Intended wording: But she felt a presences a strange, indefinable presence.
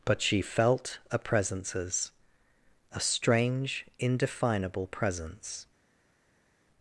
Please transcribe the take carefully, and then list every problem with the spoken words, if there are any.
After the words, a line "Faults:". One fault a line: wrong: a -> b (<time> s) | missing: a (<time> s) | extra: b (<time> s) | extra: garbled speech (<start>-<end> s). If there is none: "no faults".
But she felt a presences a strange, indefinable presence.
Faults:
no faults